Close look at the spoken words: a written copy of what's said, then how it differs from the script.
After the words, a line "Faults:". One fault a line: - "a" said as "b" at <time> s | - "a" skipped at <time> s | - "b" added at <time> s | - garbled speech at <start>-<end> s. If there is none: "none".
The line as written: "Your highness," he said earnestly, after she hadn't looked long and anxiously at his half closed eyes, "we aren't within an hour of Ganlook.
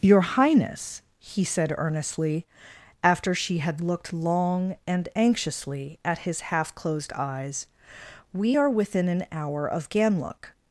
"Your highness," he said earnestly, after she had looked long and anxiously at his half closed eyes, "we are within an hour of Ganlook.
Faults:
- "hadn't" said as "had" at 3.6 s
- "aren't" said as "are" at 8.5 s